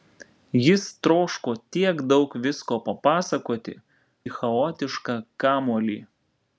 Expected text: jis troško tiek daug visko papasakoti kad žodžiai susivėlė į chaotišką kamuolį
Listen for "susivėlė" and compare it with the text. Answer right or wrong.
wrong